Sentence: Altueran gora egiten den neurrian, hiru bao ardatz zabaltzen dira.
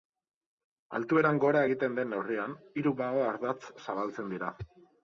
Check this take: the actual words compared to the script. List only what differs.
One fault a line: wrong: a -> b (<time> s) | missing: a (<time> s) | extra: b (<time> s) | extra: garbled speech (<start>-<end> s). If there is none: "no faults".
no faults